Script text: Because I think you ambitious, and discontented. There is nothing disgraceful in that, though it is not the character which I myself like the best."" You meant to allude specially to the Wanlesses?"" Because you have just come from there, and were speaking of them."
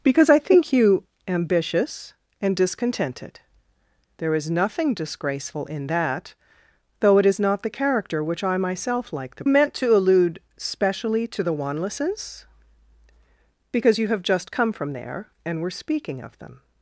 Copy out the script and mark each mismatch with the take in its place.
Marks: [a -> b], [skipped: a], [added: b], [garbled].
Because I think you ambitious, and discontented. There is nothing disgraceful in that, though it is not the character which I myself like the [skipped: best."" You] meant to allude specially to the Wanlesses?"" Because you have just come from there, and were speaking of them."